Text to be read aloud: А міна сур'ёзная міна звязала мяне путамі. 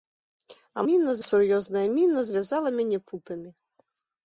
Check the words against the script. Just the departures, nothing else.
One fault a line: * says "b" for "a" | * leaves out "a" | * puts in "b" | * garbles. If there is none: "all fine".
all fine